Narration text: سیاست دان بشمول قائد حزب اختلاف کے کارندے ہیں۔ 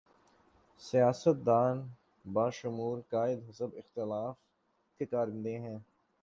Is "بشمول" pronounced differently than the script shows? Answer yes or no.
no